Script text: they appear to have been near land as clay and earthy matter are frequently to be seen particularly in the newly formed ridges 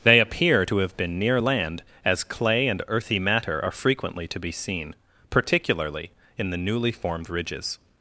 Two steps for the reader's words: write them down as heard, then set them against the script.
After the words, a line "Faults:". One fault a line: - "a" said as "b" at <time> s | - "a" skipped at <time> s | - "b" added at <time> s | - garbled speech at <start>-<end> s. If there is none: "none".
they appear to have been near land as clay and earthy matter are frequently to be seen particularly in the newly formed ridges
Faults:
none